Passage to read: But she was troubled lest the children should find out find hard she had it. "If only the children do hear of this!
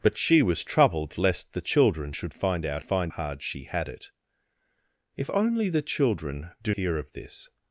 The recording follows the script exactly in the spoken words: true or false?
true